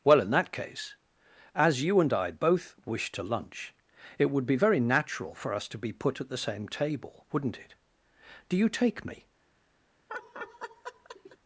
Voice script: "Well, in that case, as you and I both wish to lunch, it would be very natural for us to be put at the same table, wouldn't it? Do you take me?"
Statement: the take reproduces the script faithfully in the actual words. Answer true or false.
true